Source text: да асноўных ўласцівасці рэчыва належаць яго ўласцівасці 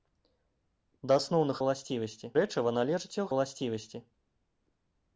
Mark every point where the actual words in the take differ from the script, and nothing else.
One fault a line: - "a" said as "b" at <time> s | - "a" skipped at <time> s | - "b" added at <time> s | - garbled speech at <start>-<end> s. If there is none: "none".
none